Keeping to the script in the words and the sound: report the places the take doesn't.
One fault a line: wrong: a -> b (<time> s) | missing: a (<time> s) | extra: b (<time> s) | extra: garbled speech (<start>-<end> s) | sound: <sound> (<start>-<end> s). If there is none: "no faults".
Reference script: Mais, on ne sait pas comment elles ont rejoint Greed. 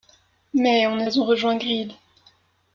missing: sait pas comment (1.1 s)